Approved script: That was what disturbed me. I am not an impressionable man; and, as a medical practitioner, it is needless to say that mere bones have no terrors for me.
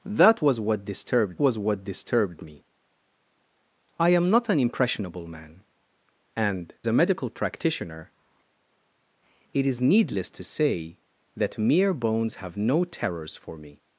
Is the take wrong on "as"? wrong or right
wrong